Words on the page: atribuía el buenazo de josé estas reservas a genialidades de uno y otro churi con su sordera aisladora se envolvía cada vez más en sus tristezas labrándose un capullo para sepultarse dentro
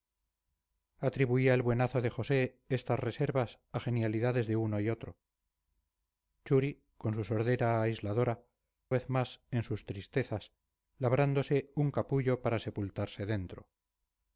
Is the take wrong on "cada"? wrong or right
wrong